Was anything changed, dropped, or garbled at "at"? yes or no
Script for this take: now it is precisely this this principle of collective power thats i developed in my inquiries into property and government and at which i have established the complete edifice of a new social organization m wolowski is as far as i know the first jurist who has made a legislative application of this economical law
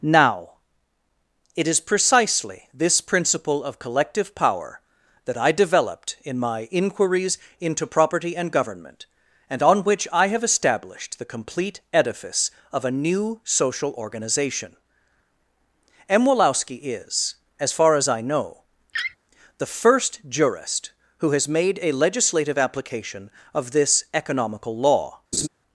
yes